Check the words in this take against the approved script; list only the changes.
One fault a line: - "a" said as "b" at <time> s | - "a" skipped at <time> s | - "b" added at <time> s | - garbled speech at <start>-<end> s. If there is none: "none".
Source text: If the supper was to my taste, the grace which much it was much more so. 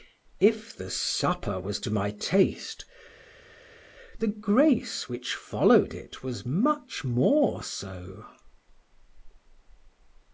- "much" said as "followed" at 5.3 s